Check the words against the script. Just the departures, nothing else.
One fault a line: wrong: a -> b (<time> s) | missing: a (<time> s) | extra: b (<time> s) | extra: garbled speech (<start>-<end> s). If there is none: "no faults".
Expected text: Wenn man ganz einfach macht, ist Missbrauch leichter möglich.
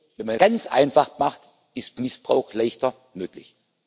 no faults